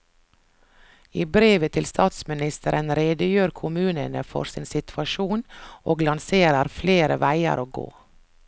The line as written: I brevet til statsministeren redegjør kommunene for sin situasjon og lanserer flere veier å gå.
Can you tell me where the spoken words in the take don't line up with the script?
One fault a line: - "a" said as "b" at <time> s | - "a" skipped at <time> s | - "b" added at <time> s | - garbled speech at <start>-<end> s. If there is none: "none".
none